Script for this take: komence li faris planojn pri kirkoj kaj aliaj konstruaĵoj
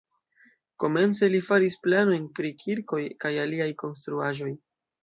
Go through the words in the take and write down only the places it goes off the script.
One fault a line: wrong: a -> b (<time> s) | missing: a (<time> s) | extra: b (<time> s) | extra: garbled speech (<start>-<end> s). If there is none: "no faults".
no faults